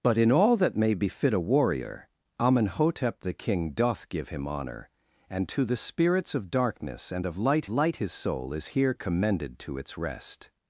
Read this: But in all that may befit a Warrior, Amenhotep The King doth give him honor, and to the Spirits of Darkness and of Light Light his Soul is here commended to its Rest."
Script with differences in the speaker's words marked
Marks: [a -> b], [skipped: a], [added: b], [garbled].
But in all that may befit a Warrior, Amenhotep The King doth give him honor, and to the Spirits of Darkness and of Light Light his Soul is here commended to its Rest."